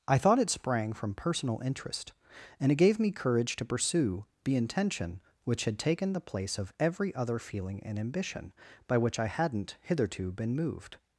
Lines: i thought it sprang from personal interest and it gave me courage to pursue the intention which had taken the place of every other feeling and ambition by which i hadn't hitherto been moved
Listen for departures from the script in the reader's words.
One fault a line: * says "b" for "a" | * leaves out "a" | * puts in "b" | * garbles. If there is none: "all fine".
all fine